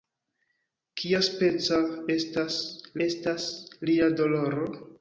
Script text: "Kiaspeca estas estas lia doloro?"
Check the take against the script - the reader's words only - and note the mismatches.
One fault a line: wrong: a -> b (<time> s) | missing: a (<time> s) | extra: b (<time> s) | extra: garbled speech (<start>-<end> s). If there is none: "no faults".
no faults